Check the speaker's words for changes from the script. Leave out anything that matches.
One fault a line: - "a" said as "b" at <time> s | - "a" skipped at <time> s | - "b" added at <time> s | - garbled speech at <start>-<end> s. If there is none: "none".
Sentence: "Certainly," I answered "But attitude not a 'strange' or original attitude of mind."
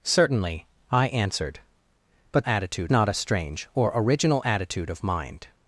none